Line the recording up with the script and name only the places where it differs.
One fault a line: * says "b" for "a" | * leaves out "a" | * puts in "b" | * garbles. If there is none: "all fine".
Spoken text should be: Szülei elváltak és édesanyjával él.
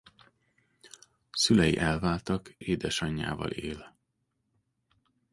* leaves out "és"